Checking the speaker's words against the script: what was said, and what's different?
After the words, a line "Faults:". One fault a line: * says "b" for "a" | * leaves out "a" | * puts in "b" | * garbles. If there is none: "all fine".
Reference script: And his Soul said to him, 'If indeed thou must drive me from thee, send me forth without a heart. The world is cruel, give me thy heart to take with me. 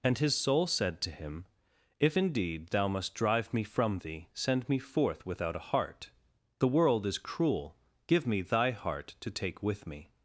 And his Soul said to him, 'If indeed thou must drive me from thee, send me forth without a heart. The world is cruel, give me thy heart to take with me.
Faults:
all fine